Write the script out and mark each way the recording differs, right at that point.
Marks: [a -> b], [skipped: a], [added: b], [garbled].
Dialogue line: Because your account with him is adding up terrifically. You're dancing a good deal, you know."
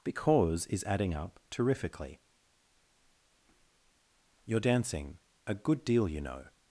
Because [skipped: your account with him] is adding up terrifically. You're dancing a good deal, you know."